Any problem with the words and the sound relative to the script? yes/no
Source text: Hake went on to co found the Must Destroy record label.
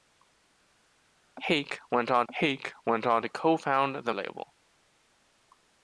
yes